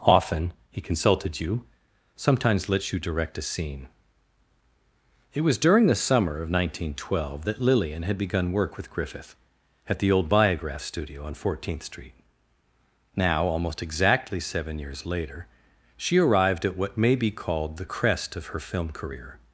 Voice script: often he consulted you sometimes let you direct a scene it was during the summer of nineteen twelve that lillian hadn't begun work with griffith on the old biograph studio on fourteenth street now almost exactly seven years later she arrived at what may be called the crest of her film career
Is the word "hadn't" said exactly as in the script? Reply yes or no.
no